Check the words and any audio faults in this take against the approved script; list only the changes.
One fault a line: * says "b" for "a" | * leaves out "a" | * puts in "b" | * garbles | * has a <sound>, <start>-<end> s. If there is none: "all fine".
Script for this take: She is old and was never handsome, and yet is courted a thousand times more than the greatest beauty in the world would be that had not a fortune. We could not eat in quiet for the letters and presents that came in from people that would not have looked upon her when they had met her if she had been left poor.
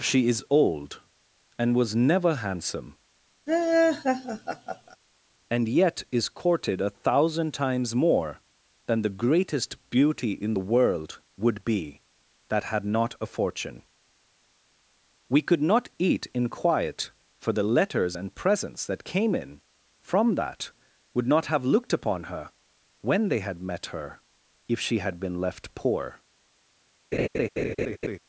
* has a laugh, 3.5-5.0 s
* leaves out "people"
* has a laugh, 27.1-28.2 s